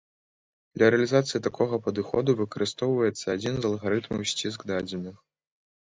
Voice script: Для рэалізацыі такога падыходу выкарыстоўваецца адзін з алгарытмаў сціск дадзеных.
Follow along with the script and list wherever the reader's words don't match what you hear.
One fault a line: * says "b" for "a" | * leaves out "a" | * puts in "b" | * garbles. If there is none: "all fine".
all fine